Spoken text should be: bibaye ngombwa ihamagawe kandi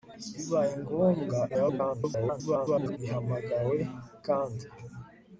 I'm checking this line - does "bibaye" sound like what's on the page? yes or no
yes